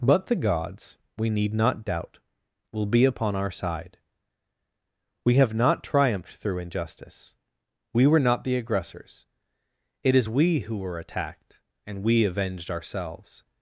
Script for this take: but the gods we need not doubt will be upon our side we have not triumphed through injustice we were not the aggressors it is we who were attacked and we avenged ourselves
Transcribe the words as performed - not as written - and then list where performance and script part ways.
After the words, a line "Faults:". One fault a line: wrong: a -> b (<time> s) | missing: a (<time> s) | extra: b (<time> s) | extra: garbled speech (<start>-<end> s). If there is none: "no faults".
but the gods we need not doubt will be upon our side we have not triumphed through injustice we were not the aggressors it is we who were attacked and we avenged ourselves
Faults:
no faults